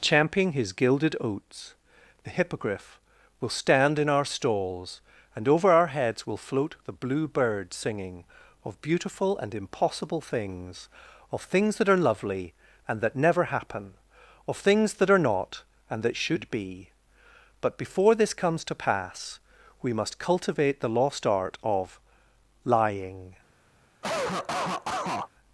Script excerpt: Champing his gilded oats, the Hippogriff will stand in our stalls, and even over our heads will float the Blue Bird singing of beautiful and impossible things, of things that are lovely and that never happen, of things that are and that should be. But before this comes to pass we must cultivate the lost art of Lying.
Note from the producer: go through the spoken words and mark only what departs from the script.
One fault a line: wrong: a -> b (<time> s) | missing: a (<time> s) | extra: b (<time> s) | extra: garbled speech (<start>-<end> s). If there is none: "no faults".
missing: even (5.5 s)
extra: not (15.2 s)